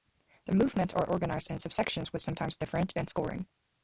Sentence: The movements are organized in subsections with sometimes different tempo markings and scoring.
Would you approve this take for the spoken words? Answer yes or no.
no